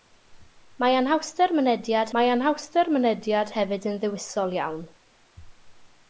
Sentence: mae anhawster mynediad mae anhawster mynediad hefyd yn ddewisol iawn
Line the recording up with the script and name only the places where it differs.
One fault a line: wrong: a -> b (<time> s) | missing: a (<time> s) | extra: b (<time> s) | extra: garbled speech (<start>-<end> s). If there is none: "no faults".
no faults